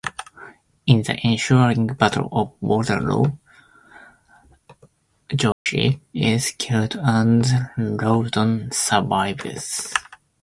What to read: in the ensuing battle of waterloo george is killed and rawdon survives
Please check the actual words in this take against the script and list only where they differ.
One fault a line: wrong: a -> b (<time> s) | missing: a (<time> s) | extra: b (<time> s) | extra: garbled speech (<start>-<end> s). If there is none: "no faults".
no faults